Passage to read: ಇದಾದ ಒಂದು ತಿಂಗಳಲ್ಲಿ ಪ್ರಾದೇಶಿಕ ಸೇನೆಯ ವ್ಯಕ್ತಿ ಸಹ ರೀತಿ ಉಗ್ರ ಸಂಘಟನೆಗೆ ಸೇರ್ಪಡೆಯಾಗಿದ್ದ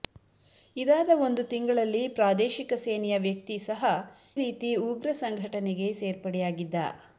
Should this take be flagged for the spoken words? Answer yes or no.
no